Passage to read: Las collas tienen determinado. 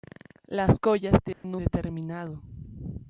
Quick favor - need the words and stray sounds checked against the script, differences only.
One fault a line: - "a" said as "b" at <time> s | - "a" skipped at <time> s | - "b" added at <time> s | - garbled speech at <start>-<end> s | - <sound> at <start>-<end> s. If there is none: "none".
- dropout at 1.3-1.4 s